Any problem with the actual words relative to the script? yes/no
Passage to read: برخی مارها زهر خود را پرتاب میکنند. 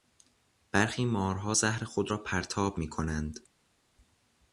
no